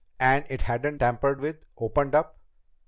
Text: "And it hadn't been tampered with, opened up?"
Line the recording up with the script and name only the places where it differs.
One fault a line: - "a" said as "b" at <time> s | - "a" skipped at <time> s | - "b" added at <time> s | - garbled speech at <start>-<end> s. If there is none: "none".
- "been" skipped at 1.0 s